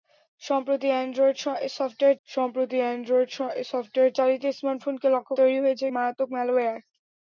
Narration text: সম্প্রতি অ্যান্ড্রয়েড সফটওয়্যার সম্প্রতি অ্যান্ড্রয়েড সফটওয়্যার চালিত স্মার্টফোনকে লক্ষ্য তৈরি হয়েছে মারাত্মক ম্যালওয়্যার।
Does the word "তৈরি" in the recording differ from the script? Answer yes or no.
no